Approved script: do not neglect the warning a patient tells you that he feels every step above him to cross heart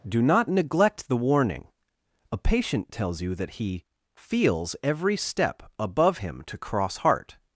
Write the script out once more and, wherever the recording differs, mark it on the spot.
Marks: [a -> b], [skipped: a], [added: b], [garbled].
do not neglect the warning a patient tells you that he feels every step above him to cross heart